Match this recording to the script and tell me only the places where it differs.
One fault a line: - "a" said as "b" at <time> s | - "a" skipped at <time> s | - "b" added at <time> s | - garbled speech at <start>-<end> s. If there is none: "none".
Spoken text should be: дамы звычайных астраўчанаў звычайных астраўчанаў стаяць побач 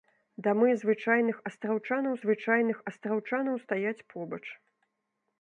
none